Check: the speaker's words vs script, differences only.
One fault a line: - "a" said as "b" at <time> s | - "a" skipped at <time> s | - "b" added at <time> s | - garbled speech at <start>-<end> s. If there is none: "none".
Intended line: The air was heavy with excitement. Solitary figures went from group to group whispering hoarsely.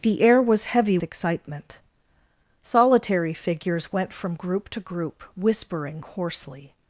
- "with" skipped at 1.0 s